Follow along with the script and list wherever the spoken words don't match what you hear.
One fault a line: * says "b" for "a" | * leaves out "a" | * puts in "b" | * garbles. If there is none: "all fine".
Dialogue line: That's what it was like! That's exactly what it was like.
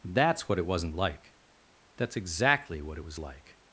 * says "wasn't" for "was"